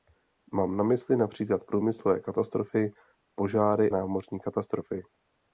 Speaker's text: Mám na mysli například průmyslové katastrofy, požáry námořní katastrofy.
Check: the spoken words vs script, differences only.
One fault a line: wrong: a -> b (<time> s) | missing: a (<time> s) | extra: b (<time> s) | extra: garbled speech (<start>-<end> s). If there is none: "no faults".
no faults